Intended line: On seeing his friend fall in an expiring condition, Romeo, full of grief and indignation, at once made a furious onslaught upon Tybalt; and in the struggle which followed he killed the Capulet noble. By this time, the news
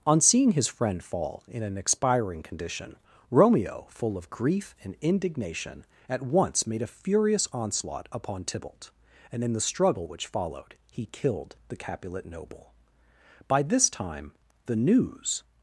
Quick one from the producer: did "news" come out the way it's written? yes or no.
yes